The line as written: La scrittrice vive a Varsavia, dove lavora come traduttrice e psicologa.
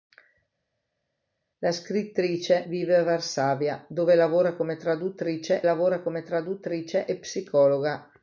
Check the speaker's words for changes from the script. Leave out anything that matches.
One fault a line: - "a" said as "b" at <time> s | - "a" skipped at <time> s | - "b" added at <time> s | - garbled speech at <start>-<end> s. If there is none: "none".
- "lavora come traduttrice" added at 5.6 s